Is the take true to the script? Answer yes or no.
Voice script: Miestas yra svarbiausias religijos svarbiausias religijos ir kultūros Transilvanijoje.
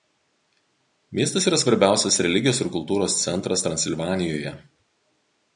no